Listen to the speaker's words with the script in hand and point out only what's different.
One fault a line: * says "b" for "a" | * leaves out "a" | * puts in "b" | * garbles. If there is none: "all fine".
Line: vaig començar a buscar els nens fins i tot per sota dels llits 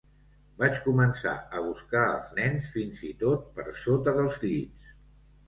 all fine